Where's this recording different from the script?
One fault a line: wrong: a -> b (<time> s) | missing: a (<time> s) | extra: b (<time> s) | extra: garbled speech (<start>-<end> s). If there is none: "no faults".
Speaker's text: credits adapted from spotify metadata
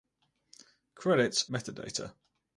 missing: adapted from spotify (1.5 s)